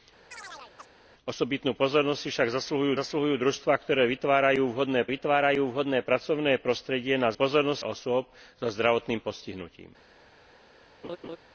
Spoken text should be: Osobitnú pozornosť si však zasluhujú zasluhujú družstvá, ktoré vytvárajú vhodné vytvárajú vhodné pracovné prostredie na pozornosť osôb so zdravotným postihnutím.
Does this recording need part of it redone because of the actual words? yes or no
no